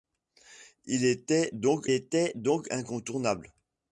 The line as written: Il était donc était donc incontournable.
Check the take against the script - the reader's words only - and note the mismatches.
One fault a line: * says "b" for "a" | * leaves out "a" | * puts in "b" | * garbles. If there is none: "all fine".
all fine